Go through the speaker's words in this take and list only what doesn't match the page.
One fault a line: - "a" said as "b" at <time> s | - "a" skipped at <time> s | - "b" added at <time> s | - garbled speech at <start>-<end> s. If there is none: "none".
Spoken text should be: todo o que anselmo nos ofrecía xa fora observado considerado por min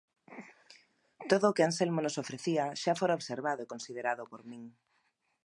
- "e" added at 3.6 s